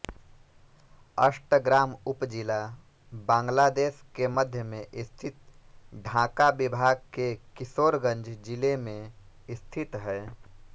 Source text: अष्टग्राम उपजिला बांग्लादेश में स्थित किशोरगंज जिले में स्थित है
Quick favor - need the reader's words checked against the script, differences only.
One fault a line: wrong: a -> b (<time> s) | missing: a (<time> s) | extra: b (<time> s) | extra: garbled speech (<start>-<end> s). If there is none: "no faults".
extra: के मध्य (4.2 s)
extra: ढाका विभाग के (6.0 s)